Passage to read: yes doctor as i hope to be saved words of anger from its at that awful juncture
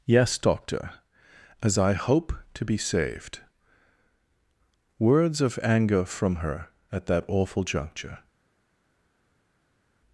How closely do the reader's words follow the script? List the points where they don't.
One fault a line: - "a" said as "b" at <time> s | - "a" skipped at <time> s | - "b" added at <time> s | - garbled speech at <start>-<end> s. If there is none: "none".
- "its" said as "her" at 6.4 s